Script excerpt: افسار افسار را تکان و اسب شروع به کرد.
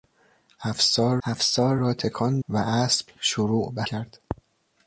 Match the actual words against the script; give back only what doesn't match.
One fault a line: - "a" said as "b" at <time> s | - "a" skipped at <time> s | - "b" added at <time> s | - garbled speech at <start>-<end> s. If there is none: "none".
none